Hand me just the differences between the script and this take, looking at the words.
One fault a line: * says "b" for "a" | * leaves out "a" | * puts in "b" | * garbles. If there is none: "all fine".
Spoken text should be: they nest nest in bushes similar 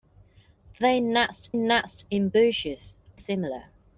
all fine